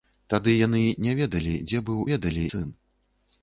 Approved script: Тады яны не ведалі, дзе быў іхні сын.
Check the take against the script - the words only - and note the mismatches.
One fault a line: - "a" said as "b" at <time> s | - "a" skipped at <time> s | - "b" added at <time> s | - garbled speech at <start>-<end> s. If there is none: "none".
- "іхні" said as "ведалі" at 2.1 s